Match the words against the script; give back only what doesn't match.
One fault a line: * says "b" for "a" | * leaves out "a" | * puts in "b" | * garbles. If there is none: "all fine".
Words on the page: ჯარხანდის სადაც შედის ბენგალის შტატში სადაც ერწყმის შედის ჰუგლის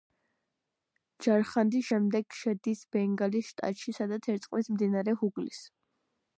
* says "შემდეგ" for "სადაც"
* says "მდინარე" for "შედის"